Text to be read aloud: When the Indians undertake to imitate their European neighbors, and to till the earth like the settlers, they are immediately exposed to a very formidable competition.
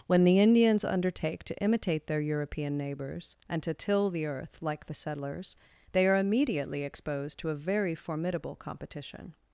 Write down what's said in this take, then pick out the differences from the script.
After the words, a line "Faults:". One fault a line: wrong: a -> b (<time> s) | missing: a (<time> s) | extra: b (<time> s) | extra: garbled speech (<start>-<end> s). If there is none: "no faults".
When the Indians undertake to imitate their European neighbors, and to till the earth like the settlers, they are immediately exposed to a very formidable competition.
Faults:
no faults